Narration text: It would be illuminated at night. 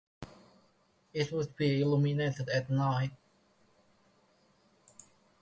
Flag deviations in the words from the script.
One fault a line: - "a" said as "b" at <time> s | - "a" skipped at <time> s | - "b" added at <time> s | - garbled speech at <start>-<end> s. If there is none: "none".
none